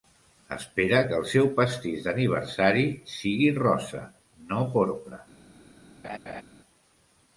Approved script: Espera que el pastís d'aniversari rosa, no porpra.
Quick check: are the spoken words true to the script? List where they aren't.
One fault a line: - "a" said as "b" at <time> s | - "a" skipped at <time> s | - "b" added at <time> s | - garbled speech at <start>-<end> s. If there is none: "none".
- "seu" added at 1.3 s
- "sigui" added at 3.1 s